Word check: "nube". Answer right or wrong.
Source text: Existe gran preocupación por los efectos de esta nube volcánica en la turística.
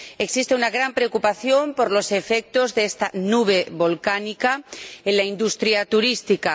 right